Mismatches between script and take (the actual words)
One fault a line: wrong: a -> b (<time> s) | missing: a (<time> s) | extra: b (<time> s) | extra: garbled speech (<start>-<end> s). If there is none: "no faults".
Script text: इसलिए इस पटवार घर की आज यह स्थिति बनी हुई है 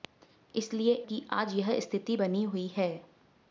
missing: इस पटवार घर (0.9 s)